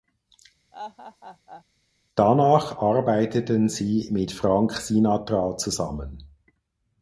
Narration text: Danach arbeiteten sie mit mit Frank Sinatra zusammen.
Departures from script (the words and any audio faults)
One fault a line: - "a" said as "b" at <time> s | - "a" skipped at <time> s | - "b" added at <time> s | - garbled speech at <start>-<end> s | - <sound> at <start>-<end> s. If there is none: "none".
- laugh at 0.7-1.6 s
- "mit" skipped at 4.3 s